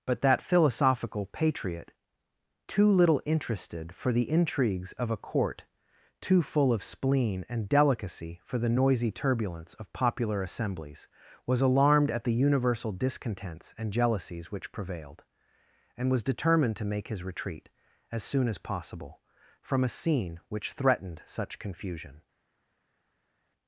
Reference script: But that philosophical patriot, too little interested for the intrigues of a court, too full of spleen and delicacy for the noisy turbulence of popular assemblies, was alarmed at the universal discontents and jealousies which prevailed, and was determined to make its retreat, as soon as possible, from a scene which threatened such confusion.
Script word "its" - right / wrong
wrong